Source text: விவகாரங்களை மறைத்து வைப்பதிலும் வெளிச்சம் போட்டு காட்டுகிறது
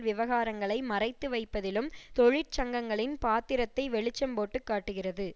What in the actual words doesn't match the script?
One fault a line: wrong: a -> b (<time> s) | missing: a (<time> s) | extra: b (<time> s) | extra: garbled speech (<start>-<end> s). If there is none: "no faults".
extra: தொழிற்சங்கங்களின் பாத்திரத்தை (2.2 s)